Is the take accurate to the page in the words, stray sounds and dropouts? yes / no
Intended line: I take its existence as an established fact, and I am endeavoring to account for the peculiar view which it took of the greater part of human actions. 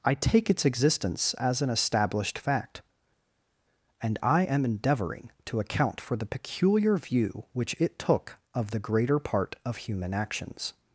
yes